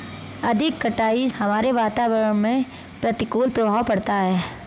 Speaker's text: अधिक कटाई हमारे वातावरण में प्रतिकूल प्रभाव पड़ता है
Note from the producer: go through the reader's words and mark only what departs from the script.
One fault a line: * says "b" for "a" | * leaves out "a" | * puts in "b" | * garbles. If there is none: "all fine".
all fine